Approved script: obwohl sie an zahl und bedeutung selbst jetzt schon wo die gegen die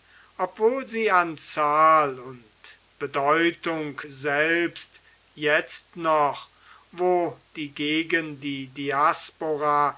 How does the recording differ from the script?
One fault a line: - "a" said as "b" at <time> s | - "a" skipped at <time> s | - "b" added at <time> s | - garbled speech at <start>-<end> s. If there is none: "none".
- "schon" said as "noch" at 6.0 s